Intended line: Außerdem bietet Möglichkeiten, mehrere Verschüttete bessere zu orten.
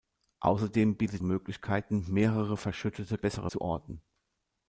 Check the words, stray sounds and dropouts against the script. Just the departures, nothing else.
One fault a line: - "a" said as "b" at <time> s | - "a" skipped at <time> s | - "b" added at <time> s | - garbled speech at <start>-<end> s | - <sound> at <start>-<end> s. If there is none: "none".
none